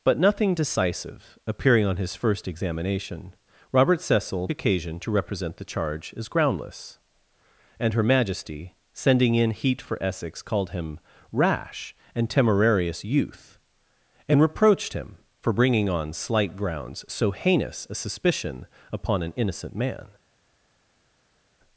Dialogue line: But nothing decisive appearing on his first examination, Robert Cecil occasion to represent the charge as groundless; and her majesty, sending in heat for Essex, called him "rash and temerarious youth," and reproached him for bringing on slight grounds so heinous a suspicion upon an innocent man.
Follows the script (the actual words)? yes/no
yes